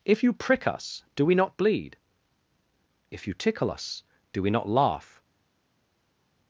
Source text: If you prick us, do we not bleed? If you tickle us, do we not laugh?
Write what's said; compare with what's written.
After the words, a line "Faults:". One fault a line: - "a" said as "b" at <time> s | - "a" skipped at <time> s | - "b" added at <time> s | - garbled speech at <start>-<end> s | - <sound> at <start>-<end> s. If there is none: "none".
If you prick us, do we not bleed? If you tickle us, do we not laugh?
Faults:
none